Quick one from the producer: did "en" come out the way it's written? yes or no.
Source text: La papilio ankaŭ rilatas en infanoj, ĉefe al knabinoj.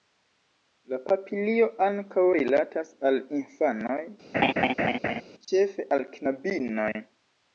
no